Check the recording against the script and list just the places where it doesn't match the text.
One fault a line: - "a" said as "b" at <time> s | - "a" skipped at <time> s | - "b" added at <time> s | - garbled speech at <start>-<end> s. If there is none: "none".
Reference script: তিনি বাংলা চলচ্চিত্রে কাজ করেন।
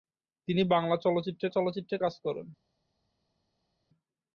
- "চলচ্চিত্রে" added at 1.5 s